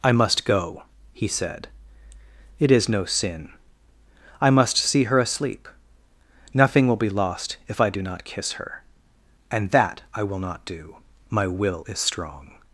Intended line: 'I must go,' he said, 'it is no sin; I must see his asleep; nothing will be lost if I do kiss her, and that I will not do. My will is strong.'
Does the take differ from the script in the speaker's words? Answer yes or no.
yes